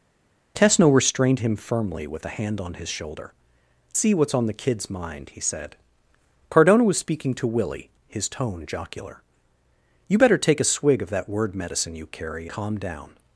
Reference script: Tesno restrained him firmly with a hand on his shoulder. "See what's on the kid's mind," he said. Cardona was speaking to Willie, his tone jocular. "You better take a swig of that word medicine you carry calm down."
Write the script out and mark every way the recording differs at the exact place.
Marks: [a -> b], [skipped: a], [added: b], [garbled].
Tesno restrained him firmly with a hand on his shoulder. "See what's on the kid's mind," he said. Cardona was speaking to Willie, his tone jocular. "You better take a swig of that word medicine you carry calm down."